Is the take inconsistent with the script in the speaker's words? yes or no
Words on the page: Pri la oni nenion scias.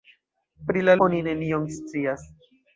no